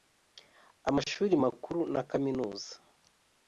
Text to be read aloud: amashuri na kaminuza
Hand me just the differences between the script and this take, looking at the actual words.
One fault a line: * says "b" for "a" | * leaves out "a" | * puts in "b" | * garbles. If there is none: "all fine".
* puts in "makuru"